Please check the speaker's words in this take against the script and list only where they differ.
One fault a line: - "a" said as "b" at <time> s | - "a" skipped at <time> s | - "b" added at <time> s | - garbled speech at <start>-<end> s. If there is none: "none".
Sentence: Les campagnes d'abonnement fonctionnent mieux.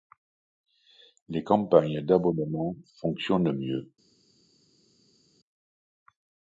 none